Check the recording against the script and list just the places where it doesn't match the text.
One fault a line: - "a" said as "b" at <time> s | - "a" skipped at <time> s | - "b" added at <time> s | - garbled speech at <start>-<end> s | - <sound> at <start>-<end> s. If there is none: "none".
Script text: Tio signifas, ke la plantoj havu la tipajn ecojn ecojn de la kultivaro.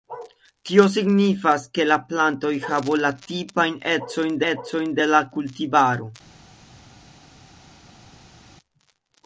none